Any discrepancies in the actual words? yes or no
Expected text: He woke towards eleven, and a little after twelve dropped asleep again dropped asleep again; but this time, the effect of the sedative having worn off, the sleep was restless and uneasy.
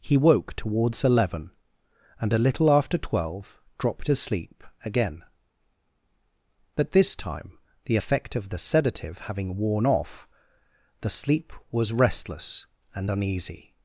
yes